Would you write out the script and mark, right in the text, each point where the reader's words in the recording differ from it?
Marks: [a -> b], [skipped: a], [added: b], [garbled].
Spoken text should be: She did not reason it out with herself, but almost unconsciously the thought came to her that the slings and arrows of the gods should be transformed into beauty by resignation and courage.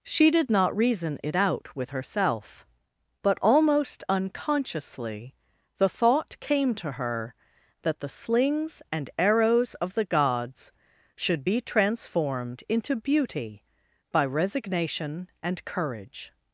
She did not reason it out with herself, but almost unconsciously the thought came to her that the slings and arrows of the gods should be transformed into beauty by resignation and courage.